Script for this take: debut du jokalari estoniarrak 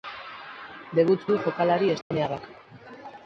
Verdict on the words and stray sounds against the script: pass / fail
fail